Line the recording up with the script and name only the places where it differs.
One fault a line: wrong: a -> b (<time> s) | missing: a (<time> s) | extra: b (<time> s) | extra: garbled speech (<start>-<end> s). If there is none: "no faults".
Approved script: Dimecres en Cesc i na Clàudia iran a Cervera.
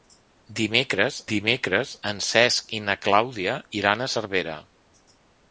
extra: dimecres (1.3 s)